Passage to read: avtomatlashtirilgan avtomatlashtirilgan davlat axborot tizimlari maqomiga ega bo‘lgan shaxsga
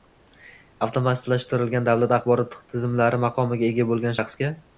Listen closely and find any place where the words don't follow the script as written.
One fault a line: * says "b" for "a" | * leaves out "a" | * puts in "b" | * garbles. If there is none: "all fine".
* leaves out "avtomatlashtirilgan"